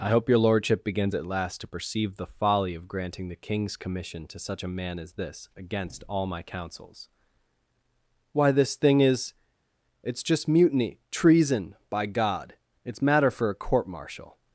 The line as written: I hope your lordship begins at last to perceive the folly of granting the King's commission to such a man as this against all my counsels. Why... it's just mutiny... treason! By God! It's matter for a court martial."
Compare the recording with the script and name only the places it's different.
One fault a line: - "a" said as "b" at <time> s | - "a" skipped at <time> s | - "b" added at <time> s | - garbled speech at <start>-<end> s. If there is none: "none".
- "this thing is" added at 8.5 s